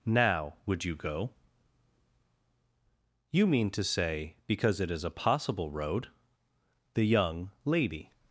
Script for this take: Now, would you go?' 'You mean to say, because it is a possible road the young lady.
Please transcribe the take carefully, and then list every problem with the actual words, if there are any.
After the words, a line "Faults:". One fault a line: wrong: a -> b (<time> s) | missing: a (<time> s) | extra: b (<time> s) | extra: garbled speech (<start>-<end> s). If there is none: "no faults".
Now, would you go?' 'You mean to say, because it is a possible road the young lady.
Faults:
no faults